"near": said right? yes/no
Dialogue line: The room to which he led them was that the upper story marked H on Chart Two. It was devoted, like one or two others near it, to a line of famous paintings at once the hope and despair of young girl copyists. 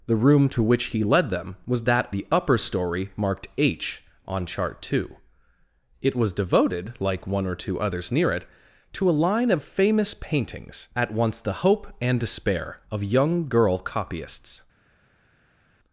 yes